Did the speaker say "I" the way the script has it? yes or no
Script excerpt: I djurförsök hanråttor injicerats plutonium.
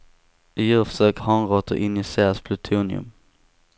yes